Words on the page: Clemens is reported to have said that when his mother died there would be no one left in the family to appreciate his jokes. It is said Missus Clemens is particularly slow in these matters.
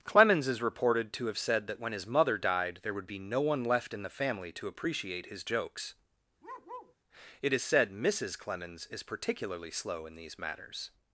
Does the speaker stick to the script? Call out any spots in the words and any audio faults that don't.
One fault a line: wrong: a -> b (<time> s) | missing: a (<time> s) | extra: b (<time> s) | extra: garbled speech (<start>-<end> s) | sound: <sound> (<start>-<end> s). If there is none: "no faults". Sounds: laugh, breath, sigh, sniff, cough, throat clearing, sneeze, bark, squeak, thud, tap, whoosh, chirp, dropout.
sound: bark (6.4-7.0 s)